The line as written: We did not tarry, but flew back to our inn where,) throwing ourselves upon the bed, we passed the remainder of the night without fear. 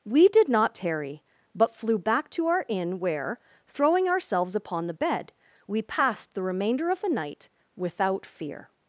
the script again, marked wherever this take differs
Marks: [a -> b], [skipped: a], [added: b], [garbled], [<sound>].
We did not tarry, but flew back to our inn where,) throwing ourselves upon the bed, we passed the remainder of the night without fear.